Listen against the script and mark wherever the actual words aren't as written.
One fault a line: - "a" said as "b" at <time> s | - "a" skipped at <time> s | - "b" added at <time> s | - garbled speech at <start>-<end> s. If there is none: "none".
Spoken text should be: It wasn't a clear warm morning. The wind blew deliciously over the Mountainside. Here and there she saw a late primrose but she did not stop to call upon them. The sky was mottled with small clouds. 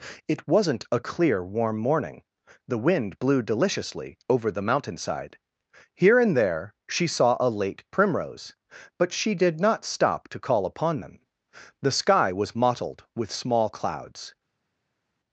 none